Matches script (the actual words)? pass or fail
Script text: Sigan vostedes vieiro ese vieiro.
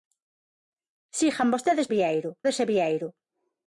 pass